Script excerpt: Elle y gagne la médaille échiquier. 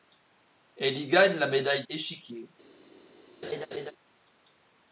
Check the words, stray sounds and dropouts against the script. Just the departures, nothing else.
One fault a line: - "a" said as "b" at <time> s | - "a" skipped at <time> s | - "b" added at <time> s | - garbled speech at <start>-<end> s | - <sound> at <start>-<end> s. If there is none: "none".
- laugh at 3.4-3.9 s